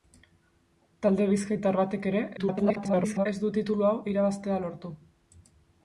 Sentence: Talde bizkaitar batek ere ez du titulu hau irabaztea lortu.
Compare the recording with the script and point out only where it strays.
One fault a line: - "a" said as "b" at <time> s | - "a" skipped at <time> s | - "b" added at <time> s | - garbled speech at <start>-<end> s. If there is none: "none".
- garbled speech at 2.4-3.3 s